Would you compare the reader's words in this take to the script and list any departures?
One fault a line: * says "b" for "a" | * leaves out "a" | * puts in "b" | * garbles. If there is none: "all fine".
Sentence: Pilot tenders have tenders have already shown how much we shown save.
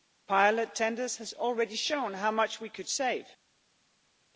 * leaves out "tenders have"
* says "could" for "shown"